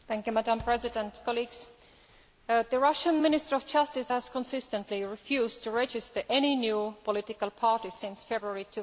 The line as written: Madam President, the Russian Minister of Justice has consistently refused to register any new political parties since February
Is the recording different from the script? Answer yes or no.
no